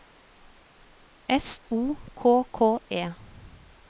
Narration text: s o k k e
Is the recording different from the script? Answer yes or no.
no